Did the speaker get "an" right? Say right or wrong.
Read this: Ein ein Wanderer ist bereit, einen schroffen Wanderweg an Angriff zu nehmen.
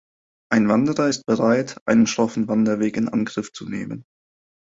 wrong